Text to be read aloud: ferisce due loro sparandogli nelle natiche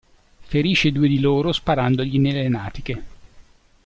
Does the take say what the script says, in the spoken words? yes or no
no